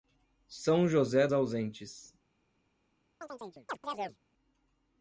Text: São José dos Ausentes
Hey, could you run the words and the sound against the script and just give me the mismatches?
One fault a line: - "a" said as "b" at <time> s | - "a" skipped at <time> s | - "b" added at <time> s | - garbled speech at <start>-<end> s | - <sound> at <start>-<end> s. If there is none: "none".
- "dos" skipped at 1.3 s
- chirp at 3.2-4.2 s